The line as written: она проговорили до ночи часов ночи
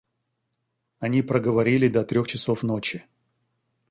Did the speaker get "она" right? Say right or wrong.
wrong